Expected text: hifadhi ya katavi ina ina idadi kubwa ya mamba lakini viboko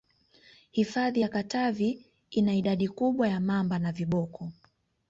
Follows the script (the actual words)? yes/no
no